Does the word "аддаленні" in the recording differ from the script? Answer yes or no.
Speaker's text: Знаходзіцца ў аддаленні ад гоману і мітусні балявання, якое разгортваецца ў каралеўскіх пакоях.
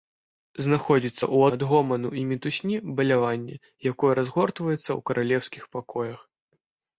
yes